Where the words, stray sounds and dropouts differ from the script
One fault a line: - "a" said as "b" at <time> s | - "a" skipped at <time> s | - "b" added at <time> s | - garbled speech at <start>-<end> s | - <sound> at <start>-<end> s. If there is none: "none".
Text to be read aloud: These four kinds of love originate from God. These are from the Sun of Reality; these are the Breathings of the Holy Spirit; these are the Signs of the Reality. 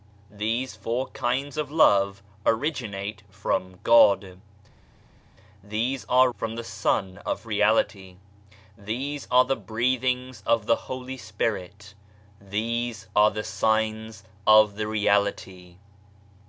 none